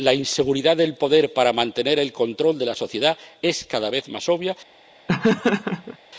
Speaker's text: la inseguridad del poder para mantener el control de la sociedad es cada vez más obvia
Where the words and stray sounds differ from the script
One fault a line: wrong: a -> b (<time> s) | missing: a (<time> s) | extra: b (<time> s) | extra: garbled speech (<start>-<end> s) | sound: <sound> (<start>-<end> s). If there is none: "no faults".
sound: laugh (5.1-6.0 s)